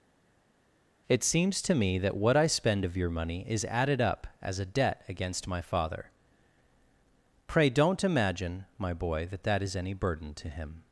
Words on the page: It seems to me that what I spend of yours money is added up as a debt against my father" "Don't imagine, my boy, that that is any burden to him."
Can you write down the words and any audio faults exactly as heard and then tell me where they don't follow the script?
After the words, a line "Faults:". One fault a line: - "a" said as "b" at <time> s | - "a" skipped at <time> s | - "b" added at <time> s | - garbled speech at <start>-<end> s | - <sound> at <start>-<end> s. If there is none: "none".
It seems to me that what I spend of your money is added up as a debt against my father" "Pray don't imagine, my boy, that that is any burden to him."
Faults:
- "yours" said as "your" at 3.0 s
- "Pray" added at 7.5 s